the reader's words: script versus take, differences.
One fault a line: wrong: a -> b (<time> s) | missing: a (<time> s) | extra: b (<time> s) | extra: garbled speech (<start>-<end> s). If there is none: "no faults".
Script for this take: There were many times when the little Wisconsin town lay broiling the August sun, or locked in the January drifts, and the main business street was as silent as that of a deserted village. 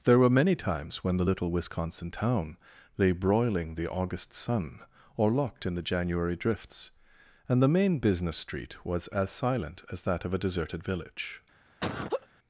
no faults